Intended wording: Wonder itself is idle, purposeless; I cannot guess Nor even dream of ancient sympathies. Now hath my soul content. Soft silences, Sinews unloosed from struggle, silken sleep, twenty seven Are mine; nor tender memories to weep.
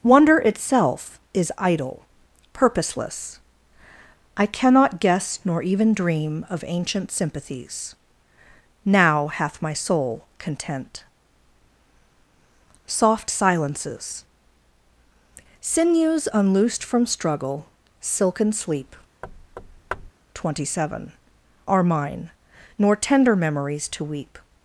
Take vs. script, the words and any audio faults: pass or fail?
fail